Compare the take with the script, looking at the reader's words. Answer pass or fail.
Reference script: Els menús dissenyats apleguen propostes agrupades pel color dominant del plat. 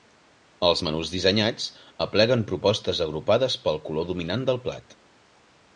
pass